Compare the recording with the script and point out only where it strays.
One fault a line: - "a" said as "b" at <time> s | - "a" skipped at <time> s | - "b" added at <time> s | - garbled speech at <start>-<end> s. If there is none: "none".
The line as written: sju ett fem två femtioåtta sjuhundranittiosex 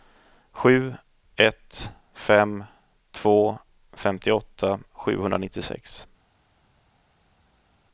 none